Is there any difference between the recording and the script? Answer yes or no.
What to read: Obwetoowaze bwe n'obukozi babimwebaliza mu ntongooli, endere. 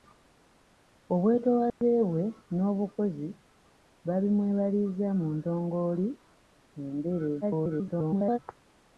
yes